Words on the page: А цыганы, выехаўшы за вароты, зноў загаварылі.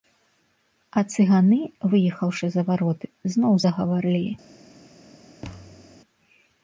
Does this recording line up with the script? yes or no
yes